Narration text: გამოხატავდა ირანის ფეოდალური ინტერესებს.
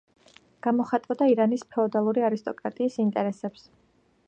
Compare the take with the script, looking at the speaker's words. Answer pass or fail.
fail